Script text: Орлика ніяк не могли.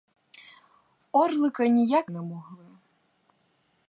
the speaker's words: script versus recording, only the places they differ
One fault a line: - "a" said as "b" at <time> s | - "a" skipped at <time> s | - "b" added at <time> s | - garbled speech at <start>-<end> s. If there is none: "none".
none